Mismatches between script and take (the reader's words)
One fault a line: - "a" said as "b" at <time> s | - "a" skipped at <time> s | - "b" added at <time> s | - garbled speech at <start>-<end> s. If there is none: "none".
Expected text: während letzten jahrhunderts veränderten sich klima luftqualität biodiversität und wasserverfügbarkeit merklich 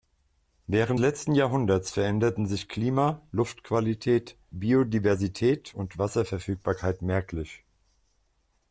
none